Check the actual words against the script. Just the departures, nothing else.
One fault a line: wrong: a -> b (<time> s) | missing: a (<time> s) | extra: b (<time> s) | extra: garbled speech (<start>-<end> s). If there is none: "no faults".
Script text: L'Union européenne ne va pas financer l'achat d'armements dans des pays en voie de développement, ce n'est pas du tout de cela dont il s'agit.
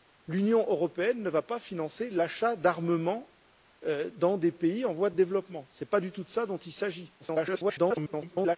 extra: garbled speech (7.2-8.6 s)